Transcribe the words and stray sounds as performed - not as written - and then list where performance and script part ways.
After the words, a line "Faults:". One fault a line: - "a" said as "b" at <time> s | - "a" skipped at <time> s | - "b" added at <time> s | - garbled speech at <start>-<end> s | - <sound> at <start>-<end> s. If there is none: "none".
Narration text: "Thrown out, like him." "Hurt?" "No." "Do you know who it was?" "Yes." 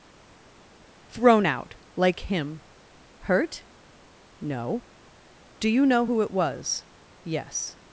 "Thrown out, like him." "Hurt?" "No." "Do you know who it was?" "Yes."
Faults:
none